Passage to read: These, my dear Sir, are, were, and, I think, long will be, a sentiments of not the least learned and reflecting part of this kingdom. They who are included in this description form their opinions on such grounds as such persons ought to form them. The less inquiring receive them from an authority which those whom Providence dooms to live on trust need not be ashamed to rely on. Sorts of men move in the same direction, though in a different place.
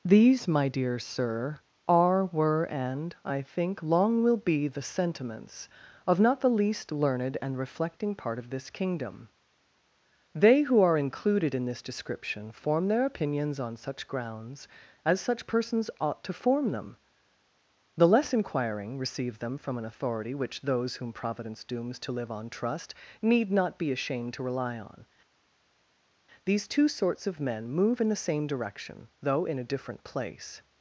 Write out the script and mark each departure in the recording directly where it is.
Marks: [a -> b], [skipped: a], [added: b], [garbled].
These, my dear Sir, are, were, and, I think, long will be, [a -> the] sentiments of not the least learned and reflecting part of this kingdom. They who are included in this description form their opinions on such grounds as such persons ought to form them. The less inquiring receive them from an authority which those whom Providence dooms to live on trust need not be ashamed to rely on. [added: These two] Sorts of men move in the same direction, though in a different place.